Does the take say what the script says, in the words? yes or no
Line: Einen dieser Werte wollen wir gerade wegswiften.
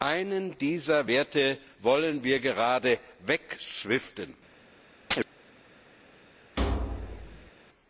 yes